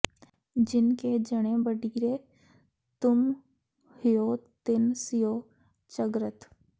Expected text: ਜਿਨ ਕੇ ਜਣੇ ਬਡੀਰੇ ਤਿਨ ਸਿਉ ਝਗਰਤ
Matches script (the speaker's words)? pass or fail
fail